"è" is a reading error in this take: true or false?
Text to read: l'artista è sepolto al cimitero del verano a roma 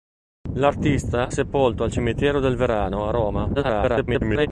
true